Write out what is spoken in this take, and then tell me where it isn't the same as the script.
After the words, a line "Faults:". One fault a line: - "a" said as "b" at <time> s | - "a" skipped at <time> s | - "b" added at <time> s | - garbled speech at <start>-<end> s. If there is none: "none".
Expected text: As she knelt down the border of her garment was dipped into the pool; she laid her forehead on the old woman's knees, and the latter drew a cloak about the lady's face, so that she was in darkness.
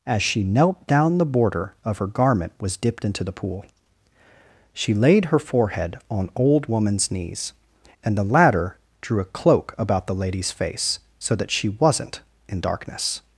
As she knelt down the border of her garment was dipped into the pool; she laid her forehead on old woman's knees, and the latter drew a cloak about the lady's face, so that she wasn't in darkness.
Faults:
- "the" skipped at 6.3 s
- "was" said as "wasn't" at 11.7 s